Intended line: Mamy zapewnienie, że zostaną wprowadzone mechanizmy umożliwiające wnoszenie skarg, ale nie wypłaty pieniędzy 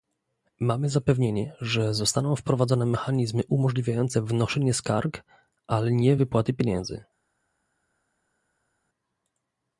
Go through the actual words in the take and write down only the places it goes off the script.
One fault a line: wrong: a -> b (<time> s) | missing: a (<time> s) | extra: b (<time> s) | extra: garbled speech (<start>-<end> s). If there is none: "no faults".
no faults